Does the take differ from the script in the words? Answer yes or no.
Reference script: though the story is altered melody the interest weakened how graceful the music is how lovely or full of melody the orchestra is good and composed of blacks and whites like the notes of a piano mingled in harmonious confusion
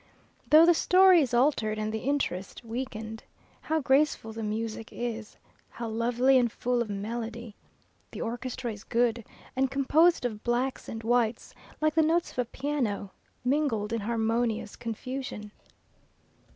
yes